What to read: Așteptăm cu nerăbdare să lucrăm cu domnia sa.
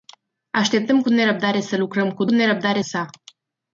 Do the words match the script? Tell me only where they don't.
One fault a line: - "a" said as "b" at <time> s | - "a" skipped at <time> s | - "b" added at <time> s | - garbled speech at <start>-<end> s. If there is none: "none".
- "domnia" said as "nerăbdare" at 2.3 s